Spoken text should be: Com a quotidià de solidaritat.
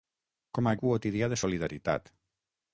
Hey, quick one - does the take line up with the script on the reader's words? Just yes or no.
yes